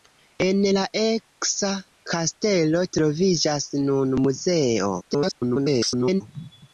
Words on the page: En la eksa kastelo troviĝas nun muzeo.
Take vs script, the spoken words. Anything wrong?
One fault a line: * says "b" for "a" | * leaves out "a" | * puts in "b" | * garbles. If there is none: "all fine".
* garbles